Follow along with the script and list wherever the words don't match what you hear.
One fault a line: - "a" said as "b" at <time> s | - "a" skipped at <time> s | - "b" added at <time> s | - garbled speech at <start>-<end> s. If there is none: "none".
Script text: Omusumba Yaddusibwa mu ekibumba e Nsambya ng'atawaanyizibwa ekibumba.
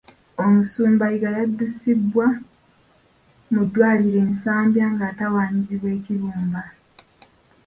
- "Yiga" added at 1.1 s
- "ekibumba" said as "ddwaliro" at 3.6 s